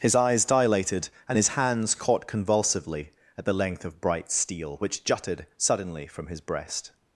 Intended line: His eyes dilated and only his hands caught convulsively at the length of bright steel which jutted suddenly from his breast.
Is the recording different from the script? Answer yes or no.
yes